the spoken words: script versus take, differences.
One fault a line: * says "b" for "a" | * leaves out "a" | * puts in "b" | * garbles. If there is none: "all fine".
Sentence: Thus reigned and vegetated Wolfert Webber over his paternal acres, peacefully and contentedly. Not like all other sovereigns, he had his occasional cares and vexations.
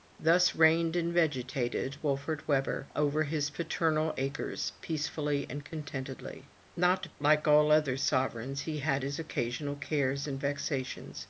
all fine